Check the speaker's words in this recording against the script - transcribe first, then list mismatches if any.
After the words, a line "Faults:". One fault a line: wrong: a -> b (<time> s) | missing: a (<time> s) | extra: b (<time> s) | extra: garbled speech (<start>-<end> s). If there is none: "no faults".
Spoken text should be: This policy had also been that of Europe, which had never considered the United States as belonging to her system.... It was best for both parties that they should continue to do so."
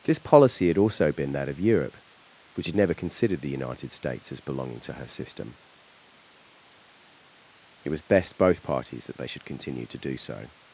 This policy had also been that of Europe, which had never considered the United States as belonging to her system.... It was best both parties that they should continue to do so."
Faults:
missing: for (8.4 s)